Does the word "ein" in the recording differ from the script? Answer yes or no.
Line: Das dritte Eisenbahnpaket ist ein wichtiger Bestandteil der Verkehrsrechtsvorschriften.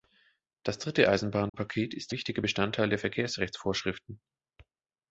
yes